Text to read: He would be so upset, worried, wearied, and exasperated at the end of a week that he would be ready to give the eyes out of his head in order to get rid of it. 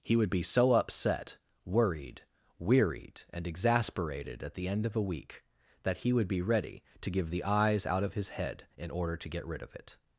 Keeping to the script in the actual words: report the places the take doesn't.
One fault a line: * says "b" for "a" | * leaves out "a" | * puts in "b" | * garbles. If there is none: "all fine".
all fine